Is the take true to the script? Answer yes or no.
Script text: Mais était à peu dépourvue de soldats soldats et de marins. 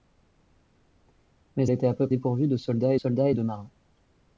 yes